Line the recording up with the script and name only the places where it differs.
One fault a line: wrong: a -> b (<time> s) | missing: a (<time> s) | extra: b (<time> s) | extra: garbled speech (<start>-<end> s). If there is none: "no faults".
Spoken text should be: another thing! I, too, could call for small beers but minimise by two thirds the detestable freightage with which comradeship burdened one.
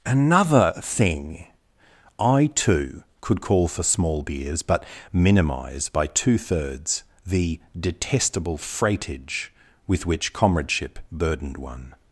no faults